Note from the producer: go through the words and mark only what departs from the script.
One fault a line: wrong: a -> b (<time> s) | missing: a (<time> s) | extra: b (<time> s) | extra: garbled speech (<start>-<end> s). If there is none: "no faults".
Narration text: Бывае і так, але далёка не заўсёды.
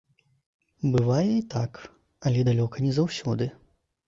no faults